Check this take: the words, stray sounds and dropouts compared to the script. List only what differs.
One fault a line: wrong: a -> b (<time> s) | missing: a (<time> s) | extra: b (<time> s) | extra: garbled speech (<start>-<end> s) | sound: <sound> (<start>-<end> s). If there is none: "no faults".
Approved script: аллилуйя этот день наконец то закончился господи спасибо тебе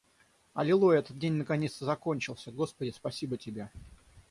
no faults